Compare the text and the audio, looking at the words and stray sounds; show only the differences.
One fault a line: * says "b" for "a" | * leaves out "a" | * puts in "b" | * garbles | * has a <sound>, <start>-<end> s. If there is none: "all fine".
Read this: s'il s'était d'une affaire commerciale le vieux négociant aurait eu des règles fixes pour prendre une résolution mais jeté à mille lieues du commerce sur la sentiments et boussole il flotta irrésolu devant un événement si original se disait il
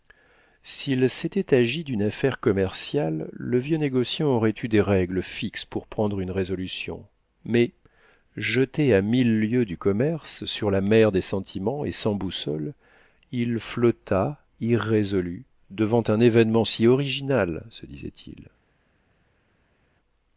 * puts in "agi"
* puts in "mer des"
* puts in "sans"